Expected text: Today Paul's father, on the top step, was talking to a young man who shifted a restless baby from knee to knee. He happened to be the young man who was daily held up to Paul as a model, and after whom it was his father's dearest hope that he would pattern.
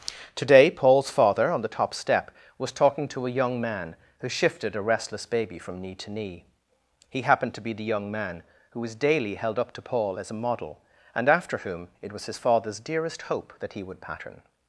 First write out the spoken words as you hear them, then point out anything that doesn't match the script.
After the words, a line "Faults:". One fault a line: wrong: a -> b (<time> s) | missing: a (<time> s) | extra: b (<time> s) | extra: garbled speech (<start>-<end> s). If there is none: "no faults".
Today Paul's father, on the top step, was talking to a young man who shifted a restless baby from knee to knee. He happened to be the young man who was daily held up to Paul as a model, and after whom it was his father's dearest hope that he would pattern.
Faults:
no faults